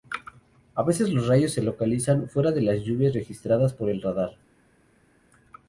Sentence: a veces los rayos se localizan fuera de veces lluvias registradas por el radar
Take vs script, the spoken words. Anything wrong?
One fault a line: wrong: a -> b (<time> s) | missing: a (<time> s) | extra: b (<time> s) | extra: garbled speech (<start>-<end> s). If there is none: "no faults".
wrong: veces -> las (2.6 s)